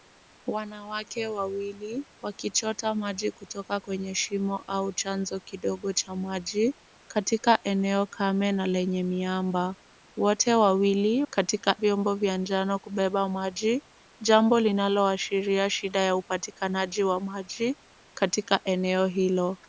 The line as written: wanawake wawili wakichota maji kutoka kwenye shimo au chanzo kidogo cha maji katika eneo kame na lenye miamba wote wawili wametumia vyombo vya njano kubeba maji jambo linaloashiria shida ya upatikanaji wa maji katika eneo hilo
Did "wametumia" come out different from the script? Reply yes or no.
yes